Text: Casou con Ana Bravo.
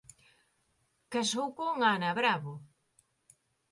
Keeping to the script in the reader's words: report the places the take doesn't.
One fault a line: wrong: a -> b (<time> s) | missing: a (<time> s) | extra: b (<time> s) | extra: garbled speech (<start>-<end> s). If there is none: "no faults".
no faults